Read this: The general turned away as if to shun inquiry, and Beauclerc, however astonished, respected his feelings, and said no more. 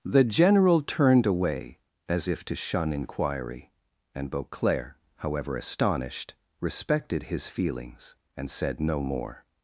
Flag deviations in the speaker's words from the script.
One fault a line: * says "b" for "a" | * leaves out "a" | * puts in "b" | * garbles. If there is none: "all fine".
all fine